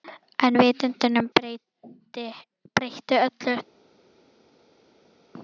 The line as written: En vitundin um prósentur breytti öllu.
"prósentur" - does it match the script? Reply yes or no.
no